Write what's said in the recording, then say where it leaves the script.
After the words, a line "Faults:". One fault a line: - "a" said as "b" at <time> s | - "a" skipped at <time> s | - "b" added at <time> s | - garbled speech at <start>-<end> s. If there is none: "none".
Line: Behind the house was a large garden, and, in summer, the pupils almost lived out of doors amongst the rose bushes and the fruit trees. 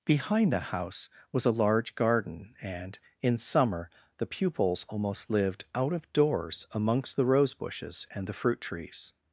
Behind the house was a large garden, and, in summer, the pupils almost lived out of doors amongst the rose bushes and the fruit trees.
Faults:
none